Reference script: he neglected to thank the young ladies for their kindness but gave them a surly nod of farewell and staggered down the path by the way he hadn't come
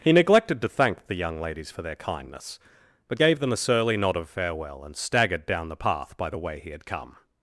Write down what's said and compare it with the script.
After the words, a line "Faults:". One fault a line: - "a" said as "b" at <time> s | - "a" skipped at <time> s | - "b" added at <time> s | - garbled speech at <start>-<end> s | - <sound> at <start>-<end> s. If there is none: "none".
he neglected to thank the young ladies for their kindness but gave them a surly nod of farewell and staggered down the path by the way he had come
Faults:
- "hadn't" said as "had" at 6.7 s